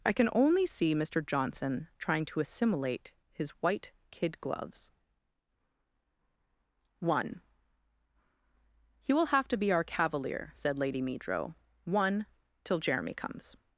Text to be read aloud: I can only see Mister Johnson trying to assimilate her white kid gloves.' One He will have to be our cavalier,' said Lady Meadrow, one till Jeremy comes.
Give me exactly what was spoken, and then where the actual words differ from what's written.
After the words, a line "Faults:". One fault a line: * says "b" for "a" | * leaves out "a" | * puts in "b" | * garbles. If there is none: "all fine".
I can only see Mister Johnson trying to assimilate his white kid gloves.' One He will have to be our cavalier,' said Lady Meadrow, one till Jeremy comes.
Faults:
* says "his" for "her"